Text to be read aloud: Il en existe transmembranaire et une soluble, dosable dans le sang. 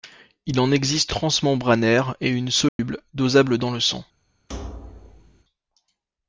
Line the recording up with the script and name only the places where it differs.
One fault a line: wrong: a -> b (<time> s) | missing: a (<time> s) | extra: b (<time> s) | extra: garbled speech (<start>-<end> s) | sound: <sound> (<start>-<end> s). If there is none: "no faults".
sound: dropout (2.7-2.8 s)
sound: thud (4.5-5.4 s)